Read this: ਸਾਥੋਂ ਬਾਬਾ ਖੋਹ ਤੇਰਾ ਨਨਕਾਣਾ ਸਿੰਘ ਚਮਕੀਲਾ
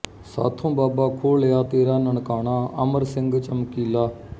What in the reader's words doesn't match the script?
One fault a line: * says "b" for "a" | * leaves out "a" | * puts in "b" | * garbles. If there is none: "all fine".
* puts in "ਲਿਆ"
* puts in "ਅਮਰ"